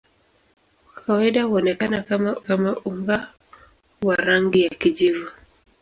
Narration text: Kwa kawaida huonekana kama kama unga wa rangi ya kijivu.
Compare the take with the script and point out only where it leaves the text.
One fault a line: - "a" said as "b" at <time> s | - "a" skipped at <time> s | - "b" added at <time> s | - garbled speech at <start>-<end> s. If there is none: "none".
none